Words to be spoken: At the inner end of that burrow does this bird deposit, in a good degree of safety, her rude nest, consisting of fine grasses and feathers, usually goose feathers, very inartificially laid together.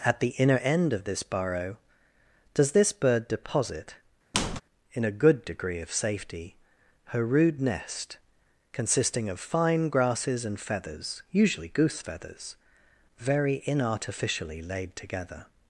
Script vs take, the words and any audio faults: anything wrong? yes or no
yes